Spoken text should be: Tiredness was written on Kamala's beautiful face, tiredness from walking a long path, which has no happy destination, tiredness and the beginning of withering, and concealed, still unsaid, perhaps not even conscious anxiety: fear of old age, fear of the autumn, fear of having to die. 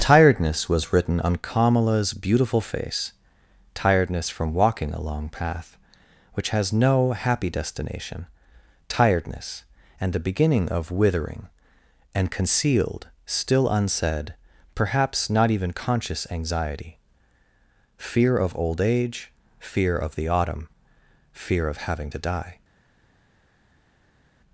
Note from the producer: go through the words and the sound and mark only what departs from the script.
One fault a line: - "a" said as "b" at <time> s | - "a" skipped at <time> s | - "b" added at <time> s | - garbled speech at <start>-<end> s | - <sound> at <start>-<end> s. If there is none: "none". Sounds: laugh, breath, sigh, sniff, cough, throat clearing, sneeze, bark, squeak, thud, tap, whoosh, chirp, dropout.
none